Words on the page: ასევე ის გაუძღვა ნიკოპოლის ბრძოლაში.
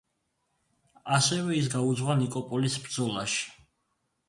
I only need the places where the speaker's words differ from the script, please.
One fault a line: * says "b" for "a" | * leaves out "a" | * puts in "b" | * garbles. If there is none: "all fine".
all fine